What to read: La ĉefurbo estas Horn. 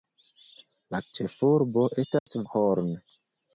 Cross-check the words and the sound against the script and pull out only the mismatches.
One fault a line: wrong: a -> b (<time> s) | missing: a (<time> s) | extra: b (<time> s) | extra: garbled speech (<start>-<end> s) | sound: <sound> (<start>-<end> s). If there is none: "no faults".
sound: dropout (2.2-2.3 s)